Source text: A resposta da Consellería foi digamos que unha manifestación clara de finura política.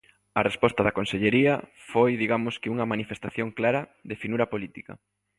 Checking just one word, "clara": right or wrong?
right